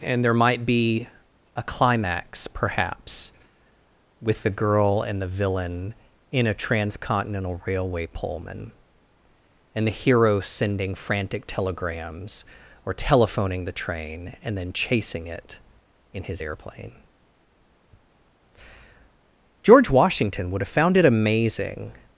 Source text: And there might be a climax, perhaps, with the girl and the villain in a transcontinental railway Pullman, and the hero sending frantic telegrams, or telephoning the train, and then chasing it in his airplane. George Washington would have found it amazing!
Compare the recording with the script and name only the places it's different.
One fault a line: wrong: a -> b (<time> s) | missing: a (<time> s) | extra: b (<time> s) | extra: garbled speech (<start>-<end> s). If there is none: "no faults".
no faults